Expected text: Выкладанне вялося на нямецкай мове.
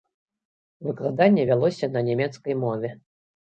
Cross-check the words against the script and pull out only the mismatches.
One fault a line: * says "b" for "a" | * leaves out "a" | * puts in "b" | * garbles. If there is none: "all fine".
all fine